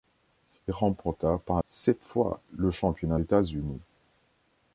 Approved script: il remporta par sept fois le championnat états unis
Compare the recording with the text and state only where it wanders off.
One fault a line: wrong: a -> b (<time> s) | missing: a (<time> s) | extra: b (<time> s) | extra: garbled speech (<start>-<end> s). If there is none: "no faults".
no faults